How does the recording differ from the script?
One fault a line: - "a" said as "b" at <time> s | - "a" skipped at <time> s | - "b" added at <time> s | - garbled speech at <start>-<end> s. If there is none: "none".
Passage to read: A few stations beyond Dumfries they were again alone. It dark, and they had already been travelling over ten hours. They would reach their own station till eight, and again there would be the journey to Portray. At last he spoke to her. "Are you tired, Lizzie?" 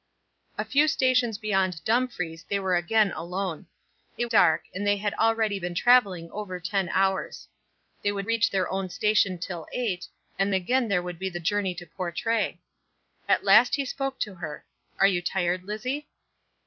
none